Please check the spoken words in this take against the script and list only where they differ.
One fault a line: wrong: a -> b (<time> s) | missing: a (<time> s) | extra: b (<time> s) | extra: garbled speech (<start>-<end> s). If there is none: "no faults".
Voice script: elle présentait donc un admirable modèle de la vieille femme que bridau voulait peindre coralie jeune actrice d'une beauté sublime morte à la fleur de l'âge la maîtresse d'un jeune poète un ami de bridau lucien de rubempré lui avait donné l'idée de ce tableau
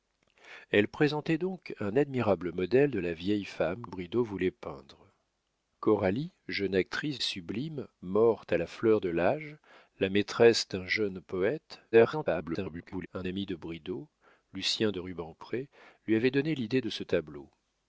missing: que (3.9 s)
missing: d'une beauté (7.2 s)
extra: garbled speech (11.9-13.1 s)